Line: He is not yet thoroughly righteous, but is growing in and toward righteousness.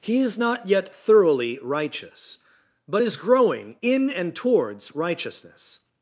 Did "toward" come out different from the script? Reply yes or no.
yes